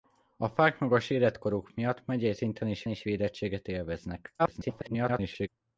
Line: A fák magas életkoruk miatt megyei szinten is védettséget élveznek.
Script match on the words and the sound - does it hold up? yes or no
no